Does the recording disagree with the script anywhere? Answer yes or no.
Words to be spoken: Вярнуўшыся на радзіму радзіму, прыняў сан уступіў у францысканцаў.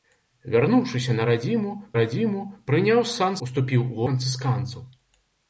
no